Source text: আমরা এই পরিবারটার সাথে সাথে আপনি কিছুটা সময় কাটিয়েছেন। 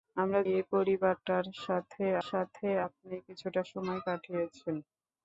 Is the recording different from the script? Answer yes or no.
no